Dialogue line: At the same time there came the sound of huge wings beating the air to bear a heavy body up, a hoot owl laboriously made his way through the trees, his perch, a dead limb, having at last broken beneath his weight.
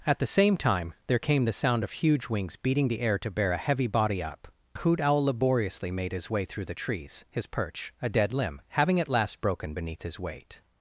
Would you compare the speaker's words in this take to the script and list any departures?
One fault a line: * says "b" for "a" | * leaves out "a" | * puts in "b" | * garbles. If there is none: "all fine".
all fine